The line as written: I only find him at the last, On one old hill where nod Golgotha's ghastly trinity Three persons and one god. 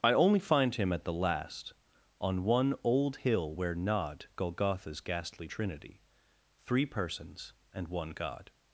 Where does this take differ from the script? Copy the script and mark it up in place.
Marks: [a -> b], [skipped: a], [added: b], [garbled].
I only find him at the last, On one old hill where nod Golgotha's ghastly trinity Three persons and one god.